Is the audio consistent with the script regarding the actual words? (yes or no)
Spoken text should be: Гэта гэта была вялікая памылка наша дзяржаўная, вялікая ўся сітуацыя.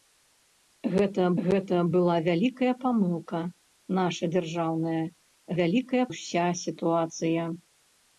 yes